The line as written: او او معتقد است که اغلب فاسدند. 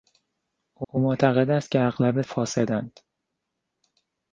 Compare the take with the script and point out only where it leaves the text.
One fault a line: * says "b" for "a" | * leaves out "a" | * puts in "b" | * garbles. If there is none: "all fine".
all fine